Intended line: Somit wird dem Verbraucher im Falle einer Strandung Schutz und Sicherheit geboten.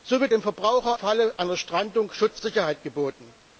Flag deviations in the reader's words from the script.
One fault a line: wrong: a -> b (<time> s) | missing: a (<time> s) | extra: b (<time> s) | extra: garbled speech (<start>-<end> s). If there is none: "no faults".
missing: wird (0.3 s)
missing: im (1.0 s)
missing: und (2.4 s)